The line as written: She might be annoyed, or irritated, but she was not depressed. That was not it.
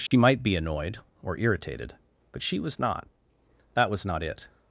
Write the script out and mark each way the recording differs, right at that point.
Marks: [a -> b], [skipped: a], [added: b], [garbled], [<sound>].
She [dropout] might be annoyed, or irritated, but she was not [skipped: depressed.] That was not it.